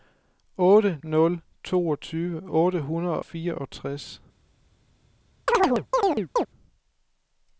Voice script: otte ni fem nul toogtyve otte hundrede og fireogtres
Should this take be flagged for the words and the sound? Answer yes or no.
yes